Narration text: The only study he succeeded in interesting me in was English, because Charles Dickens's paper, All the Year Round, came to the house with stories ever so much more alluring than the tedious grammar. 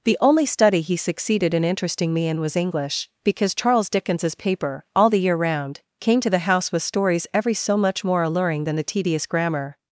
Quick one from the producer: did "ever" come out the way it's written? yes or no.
no